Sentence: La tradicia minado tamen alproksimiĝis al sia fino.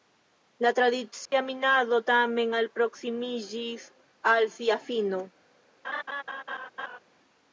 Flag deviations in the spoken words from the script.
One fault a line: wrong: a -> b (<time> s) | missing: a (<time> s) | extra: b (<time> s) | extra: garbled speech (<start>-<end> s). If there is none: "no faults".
no faults